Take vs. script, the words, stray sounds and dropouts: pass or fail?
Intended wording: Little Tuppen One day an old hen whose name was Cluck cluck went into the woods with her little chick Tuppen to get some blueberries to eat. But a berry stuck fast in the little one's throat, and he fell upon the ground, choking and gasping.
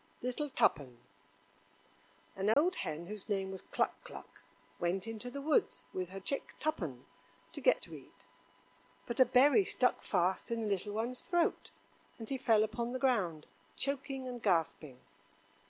fail